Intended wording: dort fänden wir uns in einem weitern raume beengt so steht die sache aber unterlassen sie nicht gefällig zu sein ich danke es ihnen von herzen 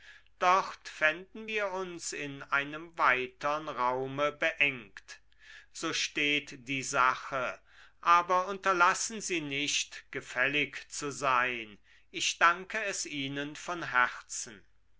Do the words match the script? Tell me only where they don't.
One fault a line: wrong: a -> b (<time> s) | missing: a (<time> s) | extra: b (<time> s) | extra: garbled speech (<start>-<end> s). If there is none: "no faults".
no faults